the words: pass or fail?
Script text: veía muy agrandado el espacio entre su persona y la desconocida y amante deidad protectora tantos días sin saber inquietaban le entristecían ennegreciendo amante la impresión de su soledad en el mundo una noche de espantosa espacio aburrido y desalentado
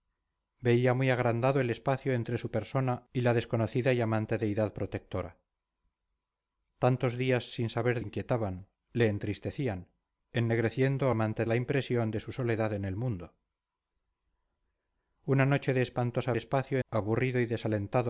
pass